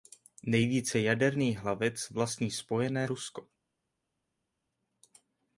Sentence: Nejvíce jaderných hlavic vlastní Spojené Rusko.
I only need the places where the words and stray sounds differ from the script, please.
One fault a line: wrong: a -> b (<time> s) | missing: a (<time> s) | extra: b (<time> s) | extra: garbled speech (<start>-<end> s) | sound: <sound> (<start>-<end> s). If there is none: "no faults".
no faults